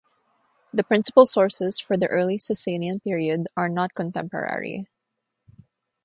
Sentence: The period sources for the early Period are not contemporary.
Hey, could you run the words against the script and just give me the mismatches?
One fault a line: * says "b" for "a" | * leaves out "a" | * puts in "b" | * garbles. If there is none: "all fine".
* says "principal" for "period"
* puts in "Sasanian"